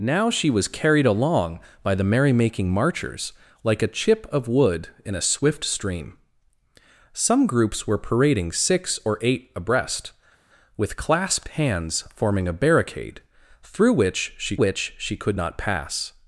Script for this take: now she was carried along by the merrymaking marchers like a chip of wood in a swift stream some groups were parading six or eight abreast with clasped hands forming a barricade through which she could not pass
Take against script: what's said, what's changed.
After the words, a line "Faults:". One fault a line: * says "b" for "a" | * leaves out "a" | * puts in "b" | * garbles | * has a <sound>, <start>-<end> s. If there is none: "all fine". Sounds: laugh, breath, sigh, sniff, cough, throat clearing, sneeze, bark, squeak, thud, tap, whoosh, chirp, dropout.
now she was carried along by the merrymaking marchers like a chip of wood in a swift stream some groups were parading six or eight abreast with clasped hands forming a barricade through which she which she could not pass
Faults:
* puts in "which she"